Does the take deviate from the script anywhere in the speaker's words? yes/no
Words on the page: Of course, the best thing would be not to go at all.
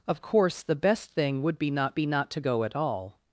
yes